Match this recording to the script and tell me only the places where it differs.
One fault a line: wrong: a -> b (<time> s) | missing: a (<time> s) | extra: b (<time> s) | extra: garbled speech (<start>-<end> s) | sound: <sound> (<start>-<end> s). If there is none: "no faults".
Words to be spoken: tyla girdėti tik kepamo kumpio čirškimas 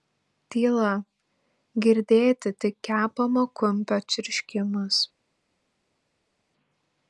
no faults